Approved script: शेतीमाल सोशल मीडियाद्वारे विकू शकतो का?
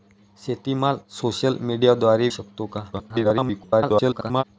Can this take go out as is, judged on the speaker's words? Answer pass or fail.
fail